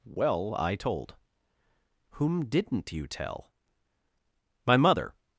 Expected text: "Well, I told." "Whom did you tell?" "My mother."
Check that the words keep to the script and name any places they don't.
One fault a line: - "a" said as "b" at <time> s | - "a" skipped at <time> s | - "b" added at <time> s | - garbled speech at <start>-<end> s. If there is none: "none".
- "did" said as "didn't" at 2.5 s